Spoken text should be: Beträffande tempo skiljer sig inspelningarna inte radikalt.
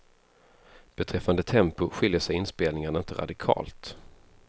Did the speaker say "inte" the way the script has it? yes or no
yes